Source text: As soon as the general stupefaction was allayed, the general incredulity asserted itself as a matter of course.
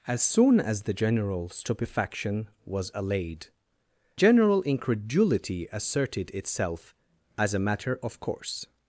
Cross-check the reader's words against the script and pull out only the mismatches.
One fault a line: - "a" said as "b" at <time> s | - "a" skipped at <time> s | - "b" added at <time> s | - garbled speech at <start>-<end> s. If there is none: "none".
- "the" skipped at 3.5 s